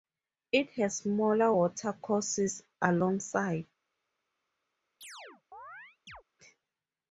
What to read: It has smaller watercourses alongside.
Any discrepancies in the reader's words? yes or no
no